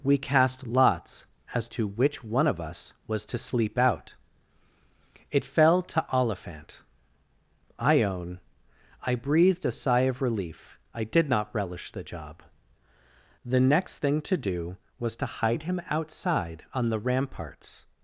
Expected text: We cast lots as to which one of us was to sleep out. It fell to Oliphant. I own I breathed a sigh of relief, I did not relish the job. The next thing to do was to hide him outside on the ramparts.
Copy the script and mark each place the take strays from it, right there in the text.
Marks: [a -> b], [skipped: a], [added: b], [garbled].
We cast lots as to which one of us was to sleep out. It fell to Oliphant. I own I breathed a sigh of relief, I did not relish the job. The next thing to do was to hide him outside on the ramparts.